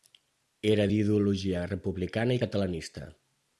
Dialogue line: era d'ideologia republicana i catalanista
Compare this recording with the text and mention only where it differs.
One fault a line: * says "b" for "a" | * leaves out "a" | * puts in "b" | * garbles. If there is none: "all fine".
all fine